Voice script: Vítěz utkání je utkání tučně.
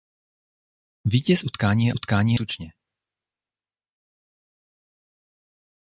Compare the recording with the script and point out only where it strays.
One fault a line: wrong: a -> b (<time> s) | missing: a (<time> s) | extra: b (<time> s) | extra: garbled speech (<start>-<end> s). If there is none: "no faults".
no faults